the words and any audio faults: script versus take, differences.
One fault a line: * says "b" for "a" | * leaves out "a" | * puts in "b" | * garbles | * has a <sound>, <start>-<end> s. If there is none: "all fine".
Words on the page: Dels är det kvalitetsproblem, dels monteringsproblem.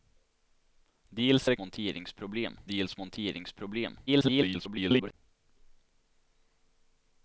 * says "monteringsproblem" for "kvalitetsproblem"
* garbles